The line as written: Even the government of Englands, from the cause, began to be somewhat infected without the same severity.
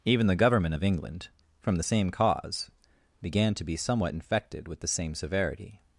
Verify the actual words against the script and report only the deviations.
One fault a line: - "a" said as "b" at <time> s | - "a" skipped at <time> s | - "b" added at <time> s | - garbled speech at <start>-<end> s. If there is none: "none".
- "Englands" said as "England" at 0.8 s
- "same" added at 1.8 s
- "without" said as "with" at 4.7 s